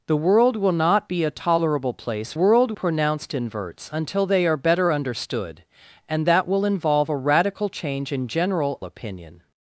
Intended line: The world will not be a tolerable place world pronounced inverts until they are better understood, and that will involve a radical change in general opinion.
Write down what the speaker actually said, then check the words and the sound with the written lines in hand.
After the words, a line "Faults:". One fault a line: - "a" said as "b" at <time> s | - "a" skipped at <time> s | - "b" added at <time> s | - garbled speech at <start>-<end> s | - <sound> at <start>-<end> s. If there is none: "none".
The world will not be a tolerable place world pronounced inverts until they are better understood, and that will involve a radical change in general opinion.
Faults:
none